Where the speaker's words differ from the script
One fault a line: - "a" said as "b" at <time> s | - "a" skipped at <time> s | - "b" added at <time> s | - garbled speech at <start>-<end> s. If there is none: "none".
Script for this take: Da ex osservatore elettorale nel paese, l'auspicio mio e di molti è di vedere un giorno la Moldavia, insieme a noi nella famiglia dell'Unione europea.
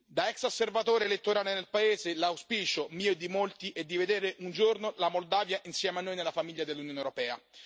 none